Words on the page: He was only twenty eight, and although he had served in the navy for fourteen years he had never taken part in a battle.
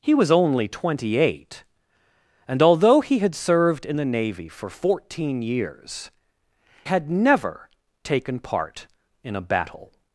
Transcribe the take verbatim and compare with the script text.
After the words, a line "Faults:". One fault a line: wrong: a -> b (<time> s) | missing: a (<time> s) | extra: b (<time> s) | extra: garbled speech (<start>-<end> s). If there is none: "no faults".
He was only twenty eight, and although he had served in the navy for fourteen years had never taken part in a battle.
Faults:
missing: he (6.1 s)